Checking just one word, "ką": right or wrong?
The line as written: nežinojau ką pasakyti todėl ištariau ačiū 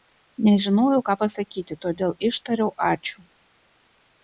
right